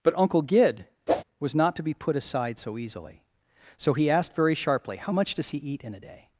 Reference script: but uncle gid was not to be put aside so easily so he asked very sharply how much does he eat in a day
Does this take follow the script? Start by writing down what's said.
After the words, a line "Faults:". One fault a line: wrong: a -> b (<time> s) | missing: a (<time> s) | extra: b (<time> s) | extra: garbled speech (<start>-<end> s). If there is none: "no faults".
but uncle gid was not to be put aside so easily so he asked very sharply how much does he eat in a day
Faults:
no faults